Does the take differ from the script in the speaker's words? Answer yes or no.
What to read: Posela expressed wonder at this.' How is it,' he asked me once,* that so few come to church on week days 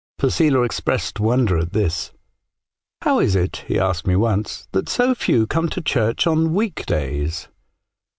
no